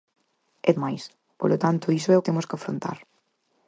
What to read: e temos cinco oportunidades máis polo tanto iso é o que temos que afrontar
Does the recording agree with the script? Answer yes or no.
no